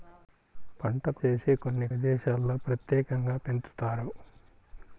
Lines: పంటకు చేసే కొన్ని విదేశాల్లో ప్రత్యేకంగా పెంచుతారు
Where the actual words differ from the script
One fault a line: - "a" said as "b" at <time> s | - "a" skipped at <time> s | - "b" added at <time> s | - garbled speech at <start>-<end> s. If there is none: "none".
none